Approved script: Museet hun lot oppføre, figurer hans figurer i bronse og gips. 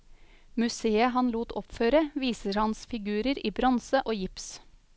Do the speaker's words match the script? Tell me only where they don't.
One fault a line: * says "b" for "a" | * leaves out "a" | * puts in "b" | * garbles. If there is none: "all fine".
* says "han" for "hun"
* says "viser" for "figurer"